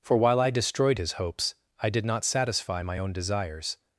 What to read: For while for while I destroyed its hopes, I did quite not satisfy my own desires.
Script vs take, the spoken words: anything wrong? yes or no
yes